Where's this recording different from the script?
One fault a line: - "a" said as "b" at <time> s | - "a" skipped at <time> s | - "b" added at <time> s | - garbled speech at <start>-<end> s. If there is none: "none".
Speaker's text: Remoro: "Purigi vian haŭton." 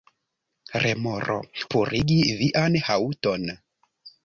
none